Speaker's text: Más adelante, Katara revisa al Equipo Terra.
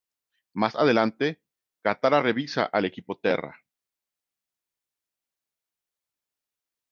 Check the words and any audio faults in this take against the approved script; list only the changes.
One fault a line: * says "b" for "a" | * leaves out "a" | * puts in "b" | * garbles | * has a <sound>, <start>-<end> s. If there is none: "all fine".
all fine